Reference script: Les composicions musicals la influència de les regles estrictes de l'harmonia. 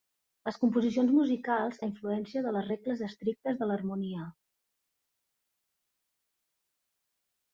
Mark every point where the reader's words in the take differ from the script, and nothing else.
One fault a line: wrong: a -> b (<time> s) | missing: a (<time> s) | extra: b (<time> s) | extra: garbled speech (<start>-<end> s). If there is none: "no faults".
no faults